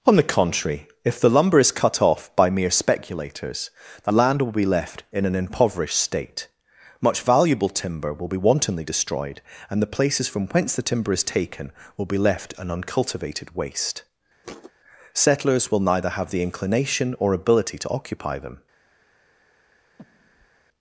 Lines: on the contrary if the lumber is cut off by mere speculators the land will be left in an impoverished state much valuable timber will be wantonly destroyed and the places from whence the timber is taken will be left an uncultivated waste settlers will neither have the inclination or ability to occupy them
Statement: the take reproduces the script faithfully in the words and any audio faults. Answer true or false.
false